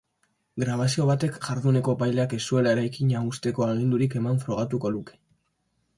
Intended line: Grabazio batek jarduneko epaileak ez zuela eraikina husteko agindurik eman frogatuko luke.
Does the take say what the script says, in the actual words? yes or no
yes